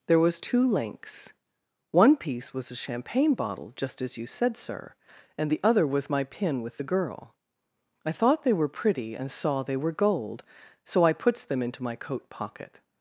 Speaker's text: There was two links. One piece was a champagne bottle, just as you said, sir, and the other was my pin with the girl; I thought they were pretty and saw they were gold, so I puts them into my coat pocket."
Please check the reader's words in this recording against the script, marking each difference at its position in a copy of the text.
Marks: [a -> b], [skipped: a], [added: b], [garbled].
There was two links. One piece was a champagne bottle, just as you said, sir, and the other was my pin with the girl; I thought they were pretty and saw they were gold, so I puts them into my coat pocket."